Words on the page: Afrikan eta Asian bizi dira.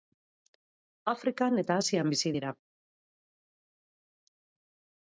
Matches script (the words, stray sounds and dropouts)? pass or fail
pass